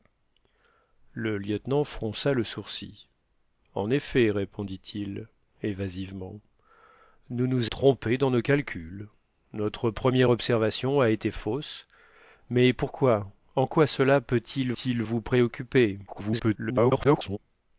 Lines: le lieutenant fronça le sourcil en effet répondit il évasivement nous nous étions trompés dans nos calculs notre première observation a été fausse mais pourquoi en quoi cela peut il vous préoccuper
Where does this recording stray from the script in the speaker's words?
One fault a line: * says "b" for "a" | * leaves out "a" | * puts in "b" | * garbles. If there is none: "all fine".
* leaves out "étions"
* puts in "il"
* garbles